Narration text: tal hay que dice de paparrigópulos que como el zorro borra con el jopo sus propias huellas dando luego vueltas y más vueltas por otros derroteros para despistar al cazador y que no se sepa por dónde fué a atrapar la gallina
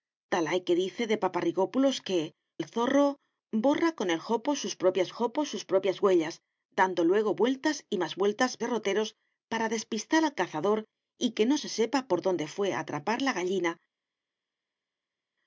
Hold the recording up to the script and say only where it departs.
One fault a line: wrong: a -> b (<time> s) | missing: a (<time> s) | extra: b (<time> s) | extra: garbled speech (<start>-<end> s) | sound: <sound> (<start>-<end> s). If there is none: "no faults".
missing: como (2.3 s)
extra: jopo sus propias (5.1 s)
missing: por otros (8.6 s)